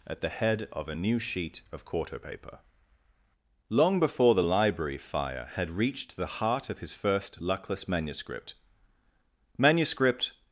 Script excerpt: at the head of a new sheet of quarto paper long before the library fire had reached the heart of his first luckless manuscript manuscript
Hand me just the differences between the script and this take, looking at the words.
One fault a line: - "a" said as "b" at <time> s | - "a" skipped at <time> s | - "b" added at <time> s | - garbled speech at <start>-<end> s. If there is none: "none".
none